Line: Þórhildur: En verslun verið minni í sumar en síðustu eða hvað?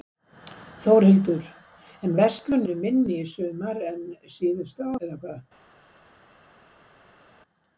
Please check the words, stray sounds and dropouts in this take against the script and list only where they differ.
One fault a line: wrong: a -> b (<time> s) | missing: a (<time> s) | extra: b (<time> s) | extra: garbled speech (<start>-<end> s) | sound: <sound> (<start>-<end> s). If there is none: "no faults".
no faults